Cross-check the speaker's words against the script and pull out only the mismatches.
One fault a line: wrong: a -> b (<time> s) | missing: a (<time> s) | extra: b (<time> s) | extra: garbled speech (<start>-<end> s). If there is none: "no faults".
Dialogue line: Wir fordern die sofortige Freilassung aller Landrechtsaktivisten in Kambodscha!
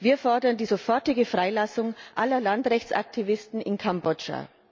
no faults